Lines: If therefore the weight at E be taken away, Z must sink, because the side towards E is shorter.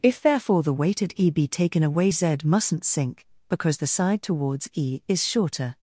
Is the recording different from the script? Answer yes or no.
yes